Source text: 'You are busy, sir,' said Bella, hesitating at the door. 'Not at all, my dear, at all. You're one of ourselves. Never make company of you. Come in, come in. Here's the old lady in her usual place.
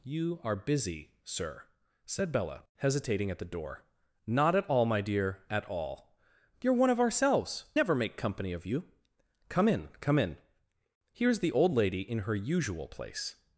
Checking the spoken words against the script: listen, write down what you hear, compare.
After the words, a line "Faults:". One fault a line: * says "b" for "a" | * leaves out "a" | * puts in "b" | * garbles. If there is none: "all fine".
'You are busy, sir,' said Bella, hesitating at the door. 'Not at all, my dear, at all. You're one of ourselves. Never make company of you. Come in, come in. Here's the old lady in her usual place.
Faults:
all fine